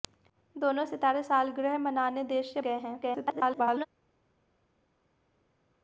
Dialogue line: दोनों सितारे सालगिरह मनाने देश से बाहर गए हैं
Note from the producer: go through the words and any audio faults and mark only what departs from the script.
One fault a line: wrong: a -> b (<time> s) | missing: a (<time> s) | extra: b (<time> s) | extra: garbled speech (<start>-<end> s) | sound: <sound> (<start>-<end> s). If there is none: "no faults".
missing: बाहर (2.6 s)
extra: garbled speech (3.0-3.9 s)